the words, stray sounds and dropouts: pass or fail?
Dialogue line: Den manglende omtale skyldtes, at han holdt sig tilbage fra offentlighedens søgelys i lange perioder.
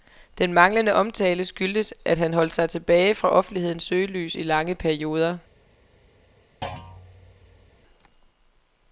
fail